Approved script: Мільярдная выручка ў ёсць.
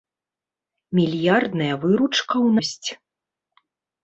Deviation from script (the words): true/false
false